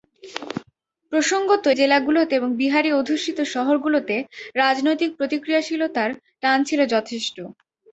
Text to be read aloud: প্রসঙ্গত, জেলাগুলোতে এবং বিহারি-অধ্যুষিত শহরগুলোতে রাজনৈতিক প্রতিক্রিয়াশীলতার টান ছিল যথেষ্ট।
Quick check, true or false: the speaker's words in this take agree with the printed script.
true